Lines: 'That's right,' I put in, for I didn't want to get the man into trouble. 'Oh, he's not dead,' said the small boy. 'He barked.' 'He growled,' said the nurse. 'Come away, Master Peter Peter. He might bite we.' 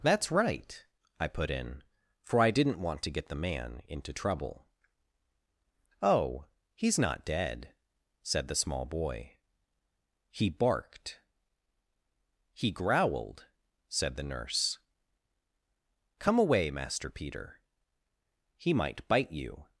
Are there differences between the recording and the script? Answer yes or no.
yes